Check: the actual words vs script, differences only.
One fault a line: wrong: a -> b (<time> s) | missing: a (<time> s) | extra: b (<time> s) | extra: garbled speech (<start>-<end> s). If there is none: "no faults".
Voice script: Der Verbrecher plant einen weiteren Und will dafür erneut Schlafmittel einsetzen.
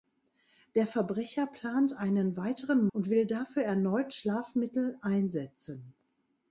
no faults